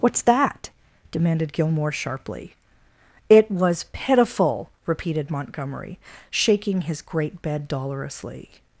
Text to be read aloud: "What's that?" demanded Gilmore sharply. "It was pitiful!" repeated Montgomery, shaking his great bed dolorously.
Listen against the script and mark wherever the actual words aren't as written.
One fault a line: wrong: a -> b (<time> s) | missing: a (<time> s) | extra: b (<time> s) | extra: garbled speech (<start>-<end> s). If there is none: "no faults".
no faults